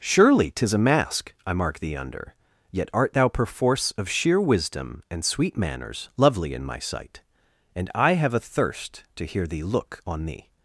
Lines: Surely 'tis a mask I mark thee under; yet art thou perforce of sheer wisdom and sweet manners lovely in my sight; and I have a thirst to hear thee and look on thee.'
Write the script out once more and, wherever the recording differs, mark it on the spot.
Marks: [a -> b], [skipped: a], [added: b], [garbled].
Surely 'tis a mask I mark thee under; yet art thou perforce of sheer wisdom and sweet manners lovely in my sight; and I have a thirst to hear thee [skipped: and] look on thee.'